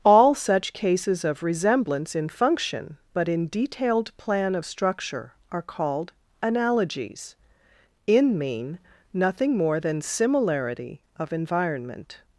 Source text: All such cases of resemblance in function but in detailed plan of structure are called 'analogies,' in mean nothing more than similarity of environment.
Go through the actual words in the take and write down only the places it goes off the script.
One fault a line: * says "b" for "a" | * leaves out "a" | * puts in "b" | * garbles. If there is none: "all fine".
all fine